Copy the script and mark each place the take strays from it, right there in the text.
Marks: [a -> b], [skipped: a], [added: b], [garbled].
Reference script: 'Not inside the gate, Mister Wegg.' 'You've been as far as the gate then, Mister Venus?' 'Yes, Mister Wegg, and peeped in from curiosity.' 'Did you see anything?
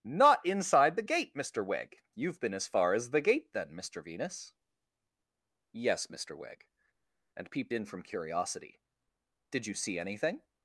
'Not inside the gate, Mister Wegg.' 'You've been as far as the gate then, Mister Venus?' 'Yes, Mister Wegg, and peeped in from curiosity.' 'Did you see anything?